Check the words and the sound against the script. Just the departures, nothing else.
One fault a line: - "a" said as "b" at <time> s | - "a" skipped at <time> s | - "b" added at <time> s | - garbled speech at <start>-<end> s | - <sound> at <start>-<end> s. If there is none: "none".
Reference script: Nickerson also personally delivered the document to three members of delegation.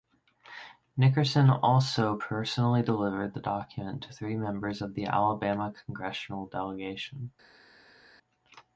- "the Alabama congressional" added at 4.9 s